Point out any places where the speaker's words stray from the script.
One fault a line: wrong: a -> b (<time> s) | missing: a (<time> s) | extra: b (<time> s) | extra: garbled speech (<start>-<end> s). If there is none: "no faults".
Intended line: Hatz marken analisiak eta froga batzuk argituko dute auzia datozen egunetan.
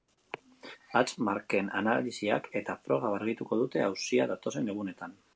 missing: batzuk (3.1 s)